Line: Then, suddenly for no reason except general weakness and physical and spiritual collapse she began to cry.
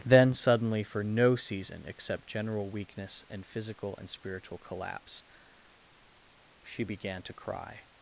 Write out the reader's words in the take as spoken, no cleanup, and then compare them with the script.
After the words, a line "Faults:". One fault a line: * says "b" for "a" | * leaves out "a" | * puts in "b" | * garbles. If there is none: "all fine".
Then, suddenly for no season except general weakness and physical and spiritual collapse she began to cry.
Faults:
* says "season" for "reason"